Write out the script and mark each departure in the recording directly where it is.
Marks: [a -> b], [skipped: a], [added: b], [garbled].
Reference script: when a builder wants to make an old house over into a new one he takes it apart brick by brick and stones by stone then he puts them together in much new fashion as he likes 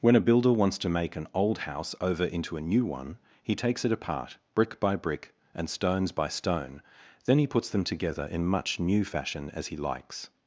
when a builder wants to make an old house over into a new one he takes it apart brick by brick and stones by stone then he puts them together in much new fashion as he likes